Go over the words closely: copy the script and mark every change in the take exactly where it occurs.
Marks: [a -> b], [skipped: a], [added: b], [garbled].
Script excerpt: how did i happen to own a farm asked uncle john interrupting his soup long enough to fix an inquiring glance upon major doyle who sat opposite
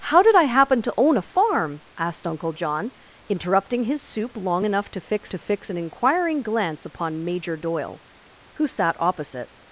how did i happen to own a farm asked uncle john interrupting his soup long enough to fix [added: to fix] an inquiring glance upon major doyle who sat opposite